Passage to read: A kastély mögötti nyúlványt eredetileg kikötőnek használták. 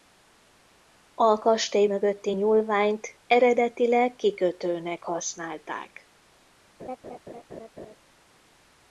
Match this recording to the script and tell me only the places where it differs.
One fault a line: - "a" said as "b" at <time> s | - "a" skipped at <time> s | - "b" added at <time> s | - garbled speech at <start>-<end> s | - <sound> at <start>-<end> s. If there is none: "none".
- laugh at 6.8-8.0 s